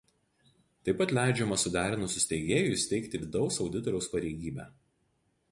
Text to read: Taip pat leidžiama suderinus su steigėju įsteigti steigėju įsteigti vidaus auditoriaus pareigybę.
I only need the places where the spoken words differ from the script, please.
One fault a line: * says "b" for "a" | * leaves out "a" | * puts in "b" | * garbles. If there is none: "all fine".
* leaves out "steigėju įsteigti"